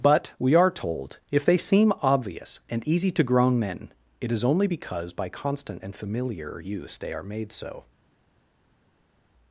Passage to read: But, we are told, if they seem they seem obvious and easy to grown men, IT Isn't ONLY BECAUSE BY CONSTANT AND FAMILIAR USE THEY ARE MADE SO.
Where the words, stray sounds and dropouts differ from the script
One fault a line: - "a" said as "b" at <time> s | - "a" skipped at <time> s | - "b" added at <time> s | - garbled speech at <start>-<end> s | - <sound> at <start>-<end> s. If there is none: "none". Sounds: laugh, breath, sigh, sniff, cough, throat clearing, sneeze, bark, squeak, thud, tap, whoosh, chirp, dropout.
- "they seem" skipped at 1.9 s
- "Isn't" said as "IS" at 4.3 s